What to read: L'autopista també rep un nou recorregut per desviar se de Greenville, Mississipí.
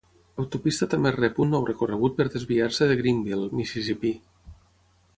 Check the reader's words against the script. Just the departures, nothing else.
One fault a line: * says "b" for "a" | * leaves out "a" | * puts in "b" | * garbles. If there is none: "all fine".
all fine